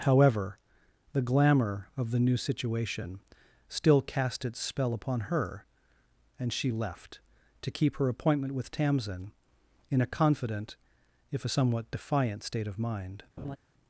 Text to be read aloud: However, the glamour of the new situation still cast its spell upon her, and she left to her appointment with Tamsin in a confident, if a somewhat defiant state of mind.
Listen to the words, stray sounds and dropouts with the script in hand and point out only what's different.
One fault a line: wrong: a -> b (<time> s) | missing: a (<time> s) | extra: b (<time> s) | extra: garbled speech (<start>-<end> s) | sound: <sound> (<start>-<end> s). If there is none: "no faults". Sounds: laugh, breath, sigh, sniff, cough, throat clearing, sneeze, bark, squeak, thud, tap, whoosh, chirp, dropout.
extra: keep (7.7 s)
sound: laugh (13.4-13.6 s)